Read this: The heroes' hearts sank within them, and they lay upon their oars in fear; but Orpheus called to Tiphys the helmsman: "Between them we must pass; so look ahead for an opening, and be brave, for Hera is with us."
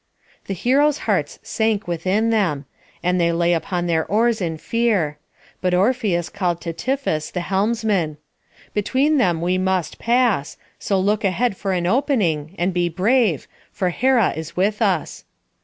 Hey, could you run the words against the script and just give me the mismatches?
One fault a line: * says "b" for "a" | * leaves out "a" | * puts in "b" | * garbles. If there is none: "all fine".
all fine